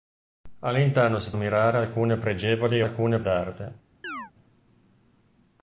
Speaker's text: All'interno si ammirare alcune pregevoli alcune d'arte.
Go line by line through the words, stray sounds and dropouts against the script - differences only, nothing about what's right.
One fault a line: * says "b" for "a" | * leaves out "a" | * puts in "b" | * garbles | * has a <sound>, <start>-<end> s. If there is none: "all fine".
* has a chirp, 4.0-4.3 s